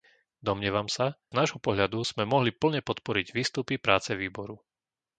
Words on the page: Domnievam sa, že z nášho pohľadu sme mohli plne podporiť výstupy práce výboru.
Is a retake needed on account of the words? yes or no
yes